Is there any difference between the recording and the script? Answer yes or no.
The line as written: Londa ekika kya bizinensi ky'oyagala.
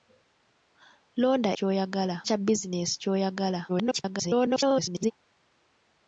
yes